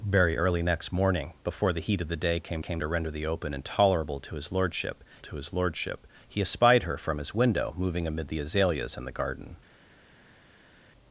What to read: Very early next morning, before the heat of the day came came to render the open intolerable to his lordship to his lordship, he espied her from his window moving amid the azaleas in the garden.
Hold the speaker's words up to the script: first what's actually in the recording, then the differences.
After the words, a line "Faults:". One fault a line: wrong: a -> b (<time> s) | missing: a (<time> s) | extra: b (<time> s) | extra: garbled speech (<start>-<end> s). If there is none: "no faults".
Very early next morning, before the heat of the day came came to render the open intolerable to his lordship to his lordship, he espied her from his window moving amid the azaleas in the garden.
Faults:
no faults